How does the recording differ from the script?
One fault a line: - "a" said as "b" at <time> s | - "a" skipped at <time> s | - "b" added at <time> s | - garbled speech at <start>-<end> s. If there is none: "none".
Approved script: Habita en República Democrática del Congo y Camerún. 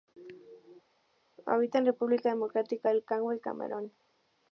none